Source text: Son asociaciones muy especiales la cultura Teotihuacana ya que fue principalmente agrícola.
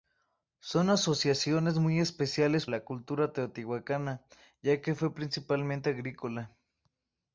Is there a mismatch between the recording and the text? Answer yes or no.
no